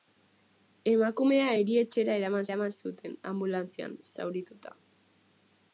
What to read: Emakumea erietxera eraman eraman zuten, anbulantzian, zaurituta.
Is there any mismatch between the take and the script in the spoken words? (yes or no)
no